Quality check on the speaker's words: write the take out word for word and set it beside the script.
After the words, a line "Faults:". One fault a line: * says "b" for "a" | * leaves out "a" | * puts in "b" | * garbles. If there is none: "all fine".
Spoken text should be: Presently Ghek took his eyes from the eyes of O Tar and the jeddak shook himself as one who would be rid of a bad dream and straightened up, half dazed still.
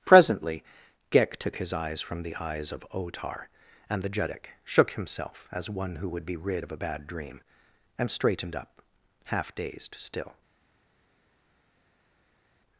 Presently Ghek took his eyes from the eyes of O Tar and the jeddak shook himself as one who would be rid of a bad dream and straightened up, half dazed still.
Faults:
all fine